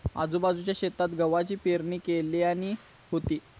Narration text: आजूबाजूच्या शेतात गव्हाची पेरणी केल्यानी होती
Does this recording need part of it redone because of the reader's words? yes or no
no